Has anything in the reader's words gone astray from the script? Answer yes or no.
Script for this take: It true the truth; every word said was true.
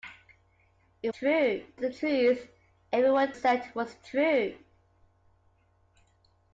no